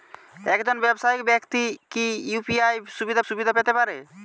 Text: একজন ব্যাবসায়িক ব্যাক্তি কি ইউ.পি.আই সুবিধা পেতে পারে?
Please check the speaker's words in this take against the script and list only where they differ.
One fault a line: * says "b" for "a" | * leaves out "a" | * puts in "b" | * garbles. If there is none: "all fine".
* puts in "সুবিধা"